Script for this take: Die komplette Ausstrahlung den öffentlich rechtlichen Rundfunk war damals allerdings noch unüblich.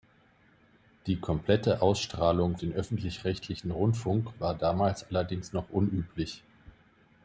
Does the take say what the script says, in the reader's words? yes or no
yes